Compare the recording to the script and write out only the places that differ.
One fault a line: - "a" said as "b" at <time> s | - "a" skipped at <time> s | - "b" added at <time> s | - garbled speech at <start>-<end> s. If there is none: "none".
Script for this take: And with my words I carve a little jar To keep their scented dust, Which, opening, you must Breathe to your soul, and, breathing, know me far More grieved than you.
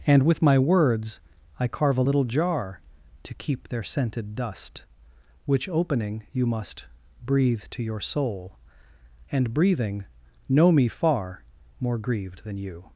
none